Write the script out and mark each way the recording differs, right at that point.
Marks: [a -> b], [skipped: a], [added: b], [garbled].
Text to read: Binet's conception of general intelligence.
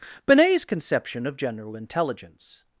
Binet's conception of general intelligence.